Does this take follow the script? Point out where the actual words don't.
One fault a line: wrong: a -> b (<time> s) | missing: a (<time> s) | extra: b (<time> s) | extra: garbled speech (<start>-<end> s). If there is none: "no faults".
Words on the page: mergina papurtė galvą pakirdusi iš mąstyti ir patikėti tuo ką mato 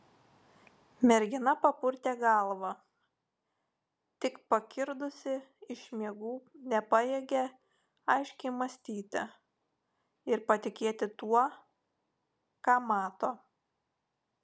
extra: tik (4.2 s)
extra: miegų nepajėgė aiškiai (6.0 s)